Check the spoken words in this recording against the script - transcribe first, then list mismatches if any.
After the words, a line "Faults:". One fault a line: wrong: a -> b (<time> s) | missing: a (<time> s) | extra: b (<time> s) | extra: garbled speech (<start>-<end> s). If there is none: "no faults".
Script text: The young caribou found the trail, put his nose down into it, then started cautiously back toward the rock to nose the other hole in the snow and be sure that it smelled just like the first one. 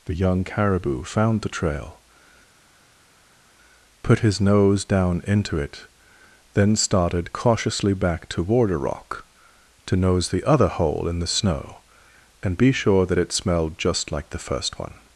The young caribou found the trail, put his nose down into it, then started cautiously back toward a rock to nose the other hole in the snow and be sure that it smelled just like the first one.
Faults:
wrong: the -> a (8.7 s)